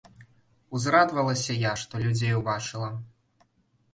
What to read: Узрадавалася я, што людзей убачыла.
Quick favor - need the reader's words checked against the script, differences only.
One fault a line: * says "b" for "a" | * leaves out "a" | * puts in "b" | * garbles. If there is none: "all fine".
all fine